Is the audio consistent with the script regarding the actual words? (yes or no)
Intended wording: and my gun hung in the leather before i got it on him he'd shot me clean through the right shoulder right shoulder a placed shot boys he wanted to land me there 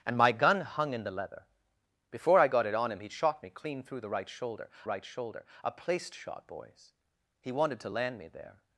yes